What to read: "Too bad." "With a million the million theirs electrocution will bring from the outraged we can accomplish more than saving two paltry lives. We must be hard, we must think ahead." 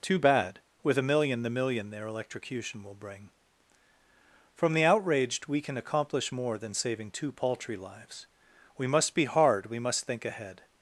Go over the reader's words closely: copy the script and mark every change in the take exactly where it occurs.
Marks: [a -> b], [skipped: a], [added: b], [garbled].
"Too bad." "With a million the million [theirs -> their] electrocution will bring from the outraged we can accomplish more than saving two paltry lives. We must be hard, we must think ahead."